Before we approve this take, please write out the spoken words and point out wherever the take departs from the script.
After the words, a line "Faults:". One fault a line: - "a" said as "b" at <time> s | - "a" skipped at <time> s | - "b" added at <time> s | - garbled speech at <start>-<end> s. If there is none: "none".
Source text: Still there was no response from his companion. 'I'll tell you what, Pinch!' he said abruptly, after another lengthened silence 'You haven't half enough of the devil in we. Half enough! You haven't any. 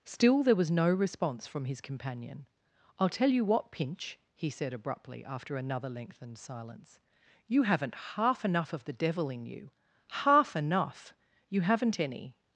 Still there was no response from his companion. 'I'll tell you what, Pinch!' he said abruptly, after another lengthened silence 'You haven't half enough of the devil in you. Half enough! You haven't any.
Faults:
- "we" said as "you" at 9.4 s